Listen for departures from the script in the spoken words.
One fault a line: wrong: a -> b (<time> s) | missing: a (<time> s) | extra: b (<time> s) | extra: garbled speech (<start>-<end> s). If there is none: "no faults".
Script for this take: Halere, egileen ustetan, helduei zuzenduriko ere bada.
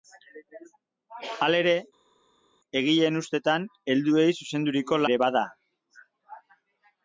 no faults